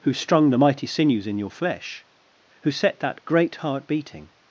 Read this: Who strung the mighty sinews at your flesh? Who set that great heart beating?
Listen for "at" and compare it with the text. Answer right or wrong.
wrong